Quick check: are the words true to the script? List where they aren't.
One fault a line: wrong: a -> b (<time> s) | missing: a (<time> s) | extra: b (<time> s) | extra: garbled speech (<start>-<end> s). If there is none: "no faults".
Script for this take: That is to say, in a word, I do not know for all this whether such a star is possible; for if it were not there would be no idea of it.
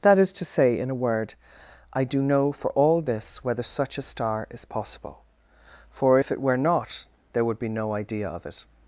missing: not (2.2 s)